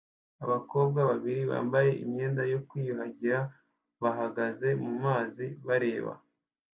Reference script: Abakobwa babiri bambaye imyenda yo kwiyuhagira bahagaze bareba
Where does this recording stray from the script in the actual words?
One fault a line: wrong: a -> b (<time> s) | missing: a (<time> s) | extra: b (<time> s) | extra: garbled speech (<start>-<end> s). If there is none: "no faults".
extra: mumazi (4.8 s)